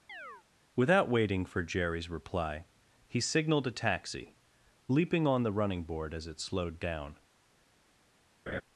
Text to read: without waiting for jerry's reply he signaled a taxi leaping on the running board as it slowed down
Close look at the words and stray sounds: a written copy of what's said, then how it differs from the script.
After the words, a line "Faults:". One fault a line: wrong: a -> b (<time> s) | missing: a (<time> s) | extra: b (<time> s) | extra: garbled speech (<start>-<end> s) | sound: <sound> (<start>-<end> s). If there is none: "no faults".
without waiting for jerry's reply he signaled a taxi leaping on the running board as it slowed down
Faults:
sound: chirp (0.1-0.4 s)
sound: laugh (8.5-8.6 s)